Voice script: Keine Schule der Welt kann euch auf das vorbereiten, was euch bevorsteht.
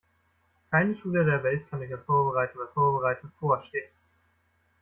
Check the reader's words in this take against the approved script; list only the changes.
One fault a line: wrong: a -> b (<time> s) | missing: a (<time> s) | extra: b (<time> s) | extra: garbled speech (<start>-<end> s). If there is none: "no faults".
missing: das (2.1 s)
wrong: euch -> vorbereiten (2.7 s)